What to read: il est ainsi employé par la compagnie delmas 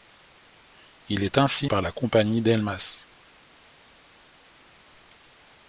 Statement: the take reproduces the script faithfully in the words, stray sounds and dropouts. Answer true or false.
false